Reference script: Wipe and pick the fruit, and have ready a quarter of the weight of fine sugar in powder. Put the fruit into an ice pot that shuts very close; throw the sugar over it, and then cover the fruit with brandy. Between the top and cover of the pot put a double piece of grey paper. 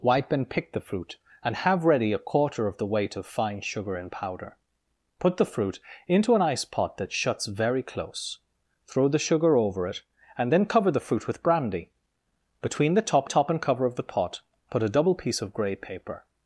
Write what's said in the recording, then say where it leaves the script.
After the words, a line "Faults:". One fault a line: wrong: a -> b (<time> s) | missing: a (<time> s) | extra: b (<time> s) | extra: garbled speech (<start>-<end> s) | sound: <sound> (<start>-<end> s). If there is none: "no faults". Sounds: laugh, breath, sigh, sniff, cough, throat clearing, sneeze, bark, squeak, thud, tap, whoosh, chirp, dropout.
Wipe and pick the fruit, and have ready a quarter of the weight of fine sugar in powder. Put the fruit into an ice pot that shuts very close; throw the sugar over it, and then cover the fruit with brandy. Between the top top and cover of the pot put a double piece of grey paper.
Faults:
extra: top (13.3 s)